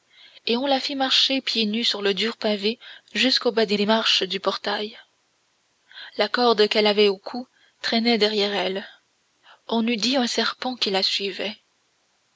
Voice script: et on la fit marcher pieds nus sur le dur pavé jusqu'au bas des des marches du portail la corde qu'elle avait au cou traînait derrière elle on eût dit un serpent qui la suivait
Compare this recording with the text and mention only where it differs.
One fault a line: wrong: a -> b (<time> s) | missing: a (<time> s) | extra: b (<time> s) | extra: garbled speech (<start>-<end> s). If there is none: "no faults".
no faults